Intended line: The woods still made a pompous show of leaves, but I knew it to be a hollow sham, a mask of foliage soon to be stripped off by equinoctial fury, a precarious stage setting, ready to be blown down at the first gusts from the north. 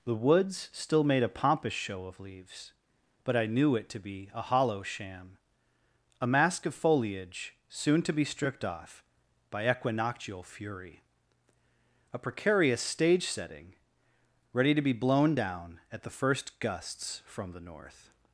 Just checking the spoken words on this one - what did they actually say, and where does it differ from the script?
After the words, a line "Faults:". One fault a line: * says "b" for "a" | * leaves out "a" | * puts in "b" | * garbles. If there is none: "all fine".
The woods still made a pompous show of leaves, but I knew it to be a hollow sham, a mask of foliage soon to be stripped off by equinoctial fury, a precarious stage setting, ready to be blown down at the first gusts from the north.
Faults:
all fine